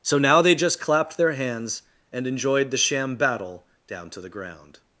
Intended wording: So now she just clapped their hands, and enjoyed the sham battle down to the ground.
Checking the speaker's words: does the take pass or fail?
fail